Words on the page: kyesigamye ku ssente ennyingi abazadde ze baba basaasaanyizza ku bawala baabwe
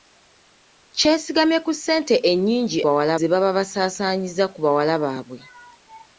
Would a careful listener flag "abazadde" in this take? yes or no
yes